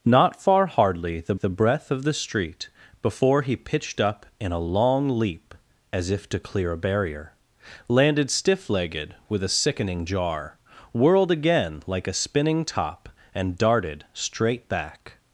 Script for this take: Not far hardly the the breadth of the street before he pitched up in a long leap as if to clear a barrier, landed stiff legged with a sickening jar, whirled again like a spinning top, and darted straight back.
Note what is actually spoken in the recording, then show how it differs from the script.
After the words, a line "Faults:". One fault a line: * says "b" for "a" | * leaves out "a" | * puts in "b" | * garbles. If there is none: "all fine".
Not far hardly the the breadth of the street before he pitched up in a long leap as if to clear a barrier, landed stiff legged with a sickening jar, whirled again like a spinning top, and darted straight back.
Faults:
all fine